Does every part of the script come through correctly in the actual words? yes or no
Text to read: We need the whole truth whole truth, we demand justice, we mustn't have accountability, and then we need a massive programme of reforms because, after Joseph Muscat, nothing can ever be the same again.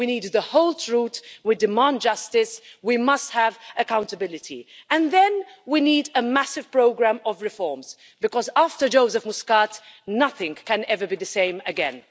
no